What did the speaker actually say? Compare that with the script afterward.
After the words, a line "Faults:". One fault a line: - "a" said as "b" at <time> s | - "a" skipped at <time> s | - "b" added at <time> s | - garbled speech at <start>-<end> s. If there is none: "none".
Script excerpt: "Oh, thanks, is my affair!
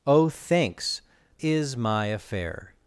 "Oh, thanks, is my affair!
Faults:
none